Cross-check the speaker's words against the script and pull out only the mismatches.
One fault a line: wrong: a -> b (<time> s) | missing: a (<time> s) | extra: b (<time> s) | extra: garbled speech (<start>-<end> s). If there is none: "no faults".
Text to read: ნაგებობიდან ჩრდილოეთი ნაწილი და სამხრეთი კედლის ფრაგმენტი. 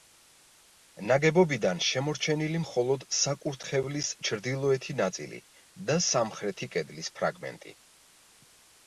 extra: შემორჩენილი მხოლოდ საკურთხევლის (1.9 s)